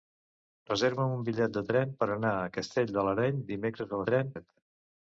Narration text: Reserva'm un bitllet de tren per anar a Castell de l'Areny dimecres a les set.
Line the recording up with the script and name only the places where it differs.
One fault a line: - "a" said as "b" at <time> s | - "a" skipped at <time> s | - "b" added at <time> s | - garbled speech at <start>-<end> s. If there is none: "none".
- "les" said as "tren" at 4.0 s